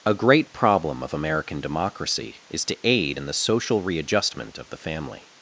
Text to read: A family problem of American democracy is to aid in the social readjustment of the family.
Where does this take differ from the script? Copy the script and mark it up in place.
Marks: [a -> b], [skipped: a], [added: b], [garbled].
A [family -> great] problem of American democracy is to aid in the social readjustment of the family.